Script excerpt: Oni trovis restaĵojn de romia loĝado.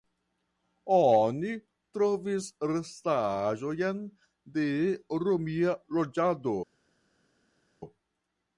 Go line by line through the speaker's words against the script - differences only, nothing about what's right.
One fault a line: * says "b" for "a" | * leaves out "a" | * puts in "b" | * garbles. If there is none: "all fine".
all fine